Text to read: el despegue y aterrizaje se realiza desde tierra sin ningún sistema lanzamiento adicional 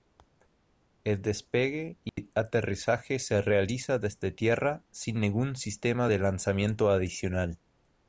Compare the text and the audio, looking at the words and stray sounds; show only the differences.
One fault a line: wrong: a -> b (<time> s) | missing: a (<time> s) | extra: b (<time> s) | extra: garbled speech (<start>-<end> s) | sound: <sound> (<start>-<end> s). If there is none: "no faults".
sound: dropout (2.1-2.2 s)
extra: de (6.1 s)